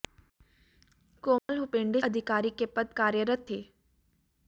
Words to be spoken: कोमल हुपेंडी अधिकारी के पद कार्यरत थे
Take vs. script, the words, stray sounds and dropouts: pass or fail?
fail